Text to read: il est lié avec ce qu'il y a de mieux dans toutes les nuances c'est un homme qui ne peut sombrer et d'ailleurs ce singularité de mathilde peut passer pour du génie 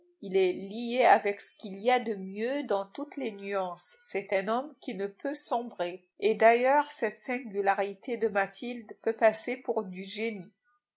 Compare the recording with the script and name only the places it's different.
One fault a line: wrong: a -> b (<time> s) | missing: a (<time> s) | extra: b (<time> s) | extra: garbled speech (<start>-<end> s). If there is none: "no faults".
wrong: ce -> cette (6.9 s)